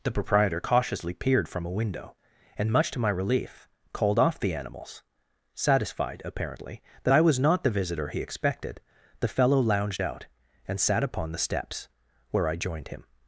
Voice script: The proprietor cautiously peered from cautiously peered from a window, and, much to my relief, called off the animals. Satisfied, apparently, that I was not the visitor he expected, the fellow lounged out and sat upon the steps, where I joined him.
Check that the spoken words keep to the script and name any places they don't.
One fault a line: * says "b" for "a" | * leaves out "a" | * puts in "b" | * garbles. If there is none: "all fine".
* leaves out "cautiously peered from"